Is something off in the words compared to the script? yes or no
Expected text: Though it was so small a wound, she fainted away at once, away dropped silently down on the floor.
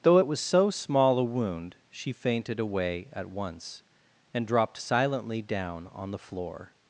yes